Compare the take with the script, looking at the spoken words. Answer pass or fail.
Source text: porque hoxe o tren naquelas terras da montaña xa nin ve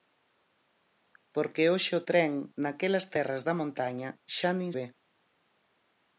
pass